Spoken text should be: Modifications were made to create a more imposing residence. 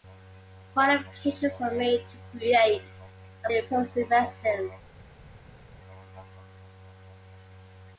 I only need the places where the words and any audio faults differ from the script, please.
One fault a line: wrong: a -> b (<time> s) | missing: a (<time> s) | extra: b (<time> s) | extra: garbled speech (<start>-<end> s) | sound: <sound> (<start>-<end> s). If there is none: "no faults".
missing: more (3.5 s)